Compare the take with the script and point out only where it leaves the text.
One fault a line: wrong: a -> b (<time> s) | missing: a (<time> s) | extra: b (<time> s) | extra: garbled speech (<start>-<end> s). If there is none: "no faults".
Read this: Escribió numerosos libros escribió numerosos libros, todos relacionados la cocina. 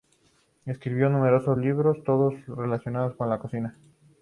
missing: escribió numerosos libros (2.0 s)
extra: con (3.2 s)